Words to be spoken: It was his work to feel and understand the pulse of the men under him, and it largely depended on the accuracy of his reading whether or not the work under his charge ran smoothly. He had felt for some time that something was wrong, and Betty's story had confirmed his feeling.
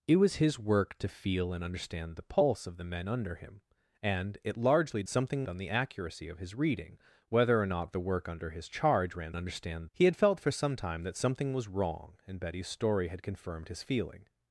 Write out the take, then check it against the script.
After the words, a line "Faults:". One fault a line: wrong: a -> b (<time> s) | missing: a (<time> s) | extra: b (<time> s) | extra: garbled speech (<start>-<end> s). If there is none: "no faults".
It was his work to feel and understand the pulse of the men under him, and it largely something on the accuracy of his reading whether or not the work under his charge ran understand. He had felt for some time that something was wrong, and Betty's story had confirmed his feeling.
Faults:
wrong: depended -> something (5.1 s)
wrong: smoothly -> understand (9.4 s)